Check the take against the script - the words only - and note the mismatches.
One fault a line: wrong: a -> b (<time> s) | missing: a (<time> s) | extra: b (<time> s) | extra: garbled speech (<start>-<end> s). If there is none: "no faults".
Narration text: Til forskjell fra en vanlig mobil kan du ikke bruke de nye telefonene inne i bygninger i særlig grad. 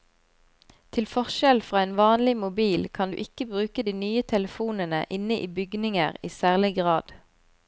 no faults